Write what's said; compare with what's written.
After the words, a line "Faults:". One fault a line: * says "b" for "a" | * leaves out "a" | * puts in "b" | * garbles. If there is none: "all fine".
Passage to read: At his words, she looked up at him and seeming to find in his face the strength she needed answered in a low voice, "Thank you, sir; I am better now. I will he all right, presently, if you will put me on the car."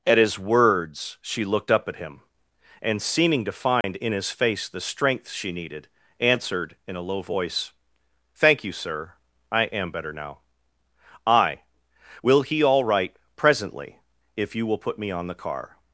At his words, she looked up at him and seeming to find in his face the strength she needed answered in a low voice, "Thank you, sir; I am better now. I will he all right, presently, if you will put me on the car."
Faults:
all fine